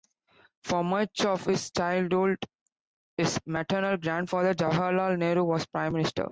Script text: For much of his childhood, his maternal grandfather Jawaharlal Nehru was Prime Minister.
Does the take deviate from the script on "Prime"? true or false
false